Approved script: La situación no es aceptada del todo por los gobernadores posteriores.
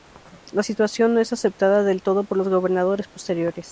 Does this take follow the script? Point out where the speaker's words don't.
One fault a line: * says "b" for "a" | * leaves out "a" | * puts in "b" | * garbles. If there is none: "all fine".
all fine